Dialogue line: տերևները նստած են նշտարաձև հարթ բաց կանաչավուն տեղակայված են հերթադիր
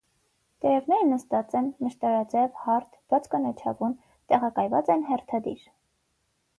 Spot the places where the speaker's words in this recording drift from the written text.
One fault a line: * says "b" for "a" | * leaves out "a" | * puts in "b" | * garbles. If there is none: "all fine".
all fine